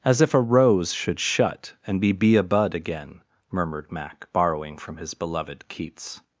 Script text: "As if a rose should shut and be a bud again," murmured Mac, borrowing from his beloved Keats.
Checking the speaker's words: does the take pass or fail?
fail